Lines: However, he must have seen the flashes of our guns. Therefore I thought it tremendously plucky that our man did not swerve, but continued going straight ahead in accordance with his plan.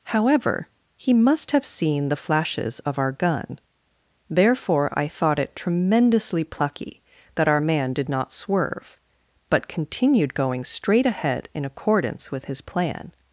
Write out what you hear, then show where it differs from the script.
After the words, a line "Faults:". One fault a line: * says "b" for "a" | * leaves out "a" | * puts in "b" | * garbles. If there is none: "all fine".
However, he must have seen the flashes of our gun. Therefore I thought it tremendously plucky that our man did not swerve, but continued going straight ahead in accordance with his plan.
Faults:
* says "gun" for "guns"